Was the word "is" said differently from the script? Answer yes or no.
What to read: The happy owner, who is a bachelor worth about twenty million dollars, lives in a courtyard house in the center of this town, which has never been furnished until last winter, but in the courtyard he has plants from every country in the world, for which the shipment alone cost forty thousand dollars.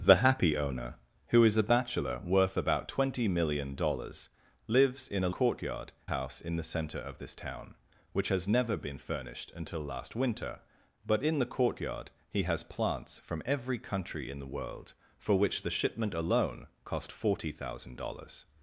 no